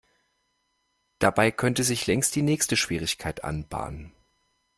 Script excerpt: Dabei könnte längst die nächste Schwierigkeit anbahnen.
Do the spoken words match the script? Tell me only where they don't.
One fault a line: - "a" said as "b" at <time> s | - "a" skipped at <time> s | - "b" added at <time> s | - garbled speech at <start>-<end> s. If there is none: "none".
- "sich" added at 1.8 s